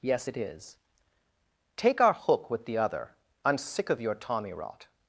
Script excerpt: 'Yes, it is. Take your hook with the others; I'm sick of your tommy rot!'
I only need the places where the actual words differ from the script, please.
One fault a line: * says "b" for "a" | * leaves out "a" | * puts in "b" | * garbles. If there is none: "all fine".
* says "our" for "your"
* says "other" for "others"